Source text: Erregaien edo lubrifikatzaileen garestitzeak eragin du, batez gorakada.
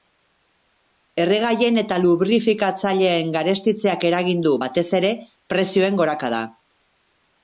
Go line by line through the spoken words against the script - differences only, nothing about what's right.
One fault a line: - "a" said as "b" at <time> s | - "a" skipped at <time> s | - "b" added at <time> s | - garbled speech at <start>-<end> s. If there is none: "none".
- "edo" said as "eta" at 1.8 s
- "ere prezioen" added at 5.0 s